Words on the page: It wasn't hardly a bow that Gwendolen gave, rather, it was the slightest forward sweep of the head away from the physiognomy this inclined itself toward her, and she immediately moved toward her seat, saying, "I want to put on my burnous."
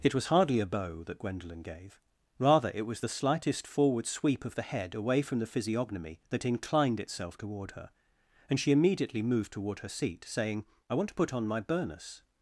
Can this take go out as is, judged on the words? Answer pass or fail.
fail